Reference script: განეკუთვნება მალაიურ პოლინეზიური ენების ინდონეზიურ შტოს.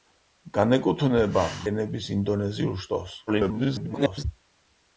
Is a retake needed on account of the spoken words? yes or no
yes